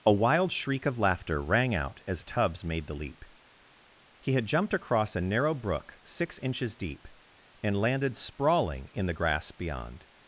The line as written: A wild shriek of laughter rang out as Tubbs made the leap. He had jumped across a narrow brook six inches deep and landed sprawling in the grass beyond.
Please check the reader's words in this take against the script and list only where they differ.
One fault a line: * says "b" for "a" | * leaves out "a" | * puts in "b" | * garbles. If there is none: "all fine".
all fine